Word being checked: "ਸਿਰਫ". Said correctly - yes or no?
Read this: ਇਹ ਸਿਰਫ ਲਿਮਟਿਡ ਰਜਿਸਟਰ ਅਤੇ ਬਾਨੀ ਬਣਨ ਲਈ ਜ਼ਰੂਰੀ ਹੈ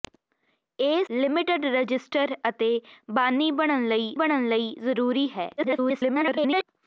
no